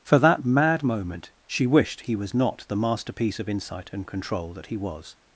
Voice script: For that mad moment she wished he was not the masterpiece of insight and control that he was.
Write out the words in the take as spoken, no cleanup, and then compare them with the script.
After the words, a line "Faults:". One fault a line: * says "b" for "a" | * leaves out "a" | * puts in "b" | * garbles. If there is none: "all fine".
For that mad moment she wished he was not the masterpiece of insight and control that he was.
Faults:
all fine